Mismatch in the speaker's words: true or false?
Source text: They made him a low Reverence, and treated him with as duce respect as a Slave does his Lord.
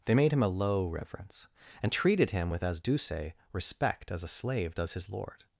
false